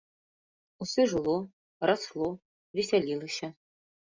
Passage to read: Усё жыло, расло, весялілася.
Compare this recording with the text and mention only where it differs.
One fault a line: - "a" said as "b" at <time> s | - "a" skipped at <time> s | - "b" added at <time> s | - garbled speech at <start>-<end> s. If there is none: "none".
none